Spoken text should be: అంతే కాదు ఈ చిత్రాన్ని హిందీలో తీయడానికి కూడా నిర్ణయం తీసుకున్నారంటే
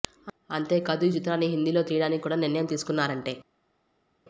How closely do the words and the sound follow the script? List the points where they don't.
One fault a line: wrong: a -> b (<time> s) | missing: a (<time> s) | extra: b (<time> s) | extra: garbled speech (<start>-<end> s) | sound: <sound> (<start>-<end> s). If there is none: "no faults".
no faults